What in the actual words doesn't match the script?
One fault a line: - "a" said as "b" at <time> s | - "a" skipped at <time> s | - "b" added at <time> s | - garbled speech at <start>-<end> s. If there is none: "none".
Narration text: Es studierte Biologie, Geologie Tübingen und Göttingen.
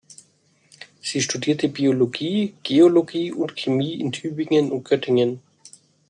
- "Es" said as "Sie" at 1.0 s
- "und Chemie in" added at 3.3 s